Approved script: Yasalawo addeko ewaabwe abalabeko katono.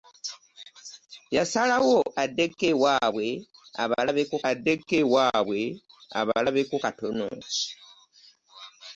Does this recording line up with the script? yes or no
no